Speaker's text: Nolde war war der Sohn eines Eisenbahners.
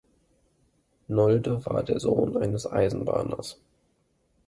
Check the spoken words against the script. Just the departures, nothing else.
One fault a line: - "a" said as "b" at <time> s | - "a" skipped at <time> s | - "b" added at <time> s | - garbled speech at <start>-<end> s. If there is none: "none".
- "war" skipped at 1.8 s